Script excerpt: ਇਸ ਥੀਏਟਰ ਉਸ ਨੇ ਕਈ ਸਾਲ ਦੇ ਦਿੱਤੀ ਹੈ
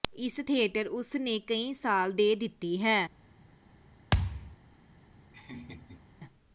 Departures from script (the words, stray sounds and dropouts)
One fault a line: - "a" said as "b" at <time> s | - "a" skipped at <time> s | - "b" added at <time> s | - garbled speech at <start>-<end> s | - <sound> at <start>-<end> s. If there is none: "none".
- thud at 4.1-4.6 s
- laugh at 5.3-6.1 s